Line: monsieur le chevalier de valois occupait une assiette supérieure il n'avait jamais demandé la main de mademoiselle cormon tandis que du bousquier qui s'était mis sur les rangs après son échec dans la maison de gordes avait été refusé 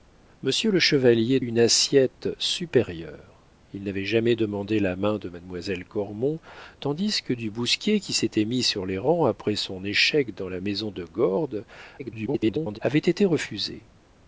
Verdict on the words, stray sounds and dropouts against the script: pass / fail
fail